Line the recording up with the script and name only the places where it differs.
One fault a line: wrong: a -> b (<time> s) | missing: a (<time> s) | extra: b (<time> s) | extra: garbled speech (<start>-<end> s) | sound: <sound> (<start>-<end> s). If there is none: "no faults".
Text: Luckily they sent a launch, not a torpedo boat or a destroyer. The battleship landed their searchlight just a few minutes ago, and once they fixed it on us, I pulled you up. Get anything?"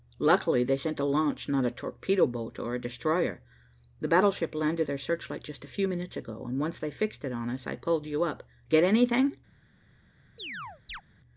sound: chirp (10.4-11.0 s)